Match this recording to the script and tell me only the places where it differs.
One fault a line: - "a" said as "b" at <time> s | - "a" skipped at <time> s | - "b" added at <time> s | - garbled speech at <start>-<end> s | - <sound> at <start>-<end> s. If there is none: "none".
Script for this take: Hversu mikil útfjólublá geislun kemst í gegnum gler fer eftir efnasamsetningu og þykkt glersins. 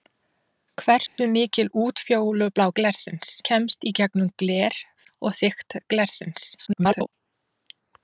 - dropout at 1.1-1.2 s
- "geislun" said as "glersins" at 2.8 s
- "fer eftir efnasamsetningu" skipped at 4.8 s
- garbled speech at 6.6-7.1 s